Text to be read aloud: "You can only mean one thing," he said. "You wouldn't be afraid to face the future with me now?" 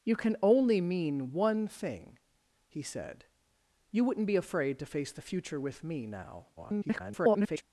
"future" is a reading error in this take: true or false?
false